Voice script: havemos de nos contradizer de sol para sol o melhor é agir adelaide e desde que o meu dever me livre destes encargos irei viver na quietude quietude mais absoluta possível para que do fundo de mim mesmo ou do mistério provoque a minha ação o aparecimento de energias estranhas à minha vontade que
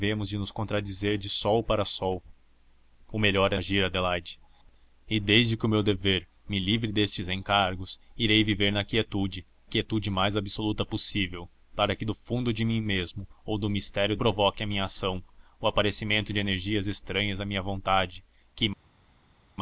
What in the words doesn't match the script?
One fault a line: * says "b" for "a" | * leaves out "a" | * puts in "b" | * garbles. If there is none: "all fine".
all fine